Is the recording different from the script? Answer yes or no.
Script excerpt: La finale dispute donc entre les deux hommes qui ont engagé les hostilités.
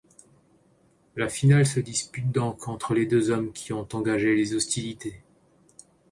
yes